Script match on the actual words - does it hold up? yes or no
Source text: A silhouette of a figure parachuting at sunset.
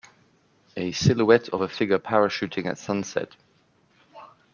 yes